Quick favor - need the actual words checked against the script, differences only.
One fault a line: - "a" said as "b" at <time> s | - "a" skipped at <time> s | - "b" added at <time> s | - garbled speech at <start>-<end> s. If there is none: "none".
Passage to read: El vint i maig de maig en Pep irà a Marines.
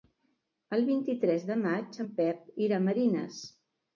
- "maig" said as "tres" at 1.2 s